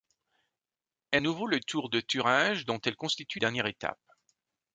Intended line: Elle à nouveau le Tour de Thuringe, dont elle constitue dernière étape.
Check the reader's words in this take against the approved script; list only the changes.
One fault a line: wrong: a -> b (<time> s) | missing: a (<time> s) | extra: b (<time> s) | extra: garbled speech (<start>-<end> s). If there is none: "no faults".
no faults